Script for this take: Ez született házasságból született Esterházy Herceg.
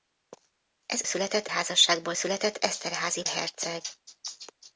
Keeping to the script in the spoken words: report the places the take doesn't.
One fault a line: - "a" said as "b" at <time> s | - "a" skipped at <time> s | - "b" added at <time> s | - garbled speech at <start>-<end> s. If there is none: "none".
none